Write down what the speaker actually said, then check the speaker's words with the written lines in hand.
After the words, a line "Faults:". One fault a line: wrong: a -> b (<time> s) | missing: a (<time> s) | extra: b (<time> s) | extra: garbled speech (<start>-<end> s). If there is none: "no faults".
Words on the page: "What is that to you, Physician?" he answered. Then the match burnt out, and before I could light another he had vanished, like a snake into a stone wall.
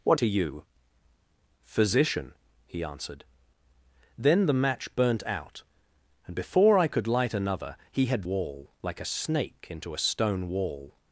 "What to you, Physician?" he answered. Then the match burnt out, and before I could light another he had wall, like a snake into a stone wall.
Faults:
missing: is that (0.2 s)
wrong: vanished -> wall (8.2 s)